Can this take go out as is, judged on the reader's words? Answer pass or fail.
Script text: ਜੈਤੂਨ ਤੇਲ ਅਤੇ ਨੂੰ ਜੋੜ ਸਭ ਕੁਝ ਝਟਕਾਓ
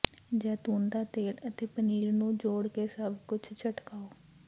fail